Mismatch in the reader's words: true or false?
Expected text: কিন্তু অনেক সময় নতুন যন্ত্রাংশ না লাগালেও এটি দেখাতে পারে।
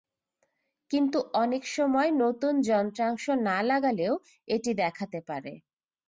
false